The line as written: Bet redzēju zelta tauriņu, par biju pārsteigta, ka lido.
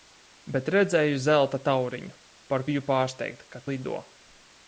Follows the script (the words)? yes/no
yes